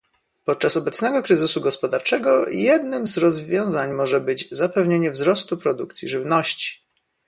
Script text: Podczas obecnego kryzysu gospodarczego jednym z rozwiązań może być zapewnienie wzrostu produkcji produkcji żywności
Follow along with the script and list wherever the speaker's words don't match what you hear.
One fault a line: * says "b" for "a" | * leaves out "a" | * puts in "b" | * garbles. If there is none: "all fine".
* leaves out "produkcji"